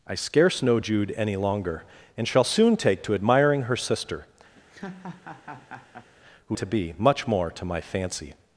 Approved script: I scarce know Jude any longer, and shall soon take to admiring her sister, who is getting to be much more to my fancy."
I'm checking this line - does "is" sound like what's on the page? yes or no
no